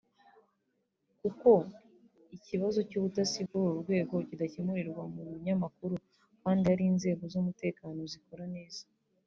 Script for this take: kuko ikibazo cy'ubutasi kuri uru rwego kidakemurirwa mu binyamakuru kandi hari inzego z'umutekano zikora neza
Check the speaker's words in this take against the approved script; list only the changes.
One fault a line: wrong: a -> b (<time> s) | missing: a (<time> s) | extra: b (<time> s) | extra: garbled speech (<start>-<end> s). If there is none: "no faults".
no faults